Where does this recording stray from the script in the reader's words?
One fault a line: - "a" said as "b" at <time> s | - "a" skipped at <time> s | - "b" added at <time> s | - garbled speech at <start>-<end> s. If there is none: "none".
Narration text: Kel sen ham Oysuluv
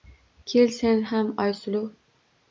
none